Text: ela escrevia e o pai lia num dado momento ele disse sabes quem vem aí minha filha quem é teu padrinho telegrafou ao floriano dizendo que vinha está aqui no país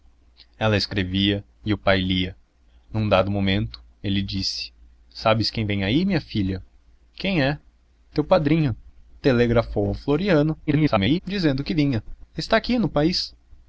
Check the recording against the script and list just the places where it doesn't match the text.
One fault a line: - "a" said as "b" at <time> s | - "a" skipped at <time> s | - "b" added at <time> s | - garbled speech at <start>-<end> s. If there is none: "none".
- garbled speech at 10.7-11.2 s